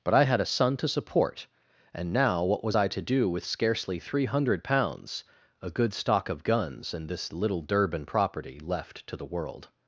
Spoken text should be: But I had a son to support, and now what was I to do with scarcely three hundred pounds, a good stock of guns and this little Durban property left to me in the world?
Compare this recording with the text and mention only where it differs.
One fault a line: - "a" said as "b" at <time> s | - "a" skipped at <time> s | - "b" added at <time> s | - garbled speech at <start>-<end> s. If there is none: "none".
- "me in" skipped at 9.2 s